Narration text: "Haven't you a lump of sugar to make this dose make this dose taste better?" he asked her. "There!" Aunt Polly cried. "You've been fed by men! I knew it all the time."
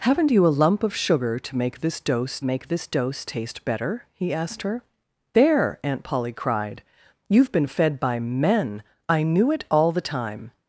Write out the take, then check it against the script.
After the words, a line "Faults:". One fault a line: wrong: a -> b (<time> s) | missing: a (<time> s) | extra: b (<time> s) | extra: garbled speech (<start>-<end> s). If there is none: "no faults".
"Haven't you a lump of sugar to make this dose make this dose taste better?" he asked her. "There!" Aunt Polly cried. "You've been fed by men! I knew it all the time."
Faults:
no faults